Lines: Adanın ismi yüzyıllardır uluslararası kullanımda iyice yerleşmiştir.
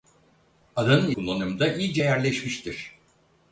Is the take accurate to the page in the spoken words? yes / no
no